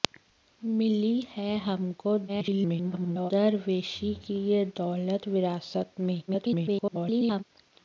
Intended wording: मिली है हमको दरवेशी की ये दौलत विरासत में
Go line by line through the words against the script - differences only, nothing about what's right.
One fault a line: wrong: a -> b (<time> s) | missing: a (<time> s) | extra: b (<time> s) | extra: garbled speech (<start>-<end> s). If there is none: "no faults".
extra: garbled speech (2.3-3.3 s)
extra: garbled speech (6.3-7.4 s)